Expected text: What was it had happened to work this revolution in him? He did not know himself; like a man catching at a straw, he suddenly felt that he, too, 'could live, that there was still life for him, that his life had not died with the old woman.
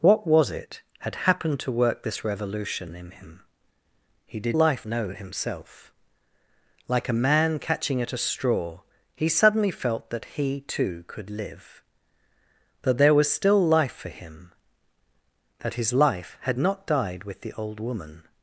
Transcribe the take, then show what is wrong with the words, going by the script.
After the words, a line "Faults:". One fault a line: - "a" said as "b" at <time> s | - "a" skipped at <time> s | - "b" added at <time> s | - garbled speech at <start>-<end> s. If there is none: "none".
What was it had happened to work this revolution in him? He did life know himself; like a man catching at a straw, he suddenly felt that he, too, 'could live, that there was still life for him, that his life had not died with the old woman.
Faults:
- "not" said as "life" at 4.5 s